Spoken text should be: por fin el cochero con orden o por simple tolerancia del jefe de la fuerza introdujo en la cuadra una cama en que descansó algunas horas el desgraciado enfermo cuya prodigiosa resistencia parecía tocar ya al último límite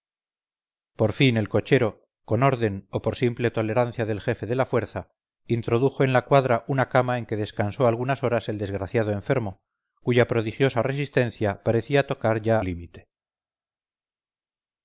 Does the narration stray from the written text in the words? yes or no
yes